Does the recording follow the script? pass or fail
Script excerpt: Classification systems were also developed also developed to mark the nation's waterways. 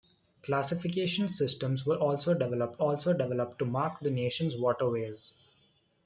pass